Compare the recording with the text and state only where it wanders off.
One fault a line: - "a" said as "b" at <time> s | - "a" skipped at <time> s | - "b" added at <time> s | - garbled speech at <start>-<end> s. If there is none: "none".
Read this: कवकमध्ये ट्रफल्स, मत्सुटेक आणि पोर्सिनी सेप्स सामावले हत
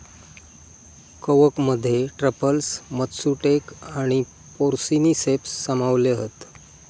none